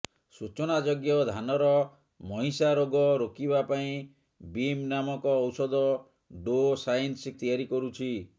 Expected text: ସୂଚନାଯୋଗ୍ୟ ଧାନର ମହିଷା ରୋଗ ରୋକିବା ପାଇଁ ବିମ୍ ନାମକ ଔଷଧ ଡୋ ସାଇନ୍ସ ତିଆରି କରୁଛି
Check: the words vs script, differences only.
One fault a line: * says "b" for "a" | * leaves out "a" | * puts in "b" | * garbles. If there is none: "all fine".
all fine